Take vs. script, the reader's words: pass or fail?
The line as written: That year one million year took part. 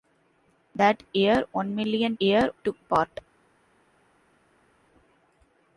pass